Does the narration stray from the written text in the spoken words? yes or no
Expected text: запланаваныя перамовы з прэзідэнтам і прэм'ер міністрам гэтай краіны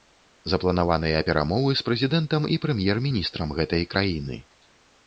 no